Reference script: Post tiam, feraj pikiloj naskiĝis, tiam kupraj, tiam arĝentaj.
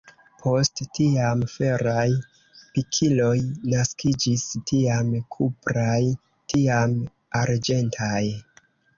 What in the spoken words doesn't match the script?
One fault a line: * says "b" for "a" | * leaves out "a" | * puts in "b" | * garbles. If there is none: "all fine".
all fine